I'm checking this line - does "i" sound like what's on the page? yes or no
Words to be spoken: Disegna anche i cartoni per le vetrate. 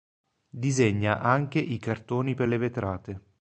yes